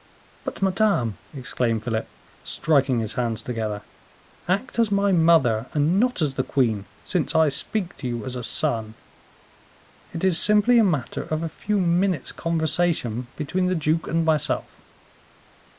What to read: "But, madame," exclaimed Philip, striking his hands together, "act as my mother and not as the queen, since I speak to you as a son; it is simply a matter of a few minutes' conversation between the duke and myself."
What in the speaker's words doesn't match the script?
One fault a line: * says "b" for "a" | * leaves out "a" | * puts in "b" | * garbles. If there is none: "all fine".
all fine